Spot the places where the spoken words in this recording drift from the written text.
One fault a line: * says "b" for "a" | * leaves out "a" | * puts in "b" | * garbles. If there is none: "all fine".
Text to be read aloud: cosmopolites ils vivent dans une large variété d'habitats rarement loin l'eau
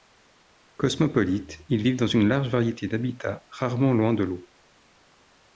* puts in "de"